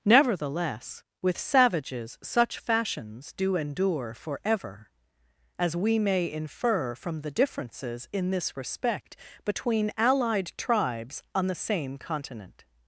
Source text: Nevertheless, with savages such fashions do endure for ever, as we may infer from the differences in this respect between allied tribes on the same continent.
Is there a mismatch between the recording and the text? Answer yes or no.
no